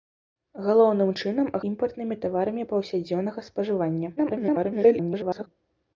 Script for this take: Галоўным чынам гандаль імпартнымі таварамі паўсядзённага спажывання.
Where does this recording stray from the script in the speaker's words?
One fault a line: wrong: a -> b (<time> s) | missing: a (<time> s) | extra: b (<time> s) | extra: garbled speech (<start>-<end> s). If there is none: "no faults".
missing: гандаль (1.5 s)
extra: garbled speech (4.2-5.5 s)